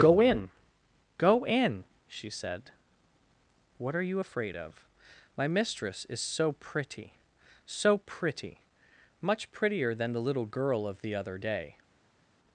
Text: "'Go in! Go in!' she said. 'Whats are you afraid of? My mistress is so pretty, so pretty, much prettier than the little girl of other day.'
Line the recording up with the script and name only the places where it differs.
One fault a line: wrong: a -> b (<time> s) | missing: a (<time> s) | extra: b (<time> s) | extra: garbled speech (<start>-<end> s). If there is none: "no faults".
wrong: Whats -> What (3.8 s)
extra: the (11.0 s)